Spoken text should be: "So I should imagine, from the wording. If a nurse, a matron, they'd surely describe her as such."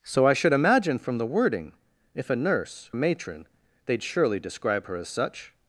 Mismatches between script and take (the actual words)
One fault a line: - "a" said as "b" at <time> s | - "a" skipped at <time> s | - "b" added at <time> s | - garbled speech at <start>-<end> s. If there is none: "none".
none